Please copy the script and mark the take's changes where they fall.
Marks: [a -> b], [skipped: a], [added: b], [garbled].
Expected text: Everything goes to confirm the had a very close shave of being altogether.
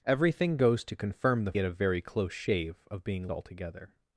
Everything goes to confirm the had a very close shave of being altogether.